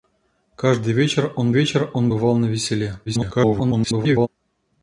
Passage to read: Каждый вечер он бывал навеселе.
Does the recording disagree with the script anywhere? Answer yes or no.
yes